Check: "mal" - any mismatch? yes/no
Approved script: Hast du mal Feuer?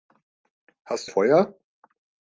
yes